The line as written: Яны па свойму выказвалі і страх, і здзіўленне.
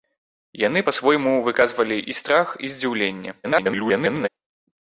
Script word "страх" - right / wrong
right